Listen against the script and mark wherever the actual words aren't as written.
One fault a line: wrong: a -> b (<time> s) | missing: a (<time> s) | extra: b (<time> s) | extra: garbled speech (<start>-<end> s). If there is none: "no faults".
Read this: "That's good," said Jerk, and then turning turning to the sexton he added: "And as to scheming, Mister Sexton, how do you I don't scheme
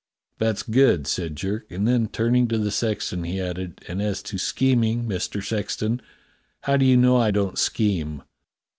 missing: turning (2.5 s)
extra: know (7.0 s)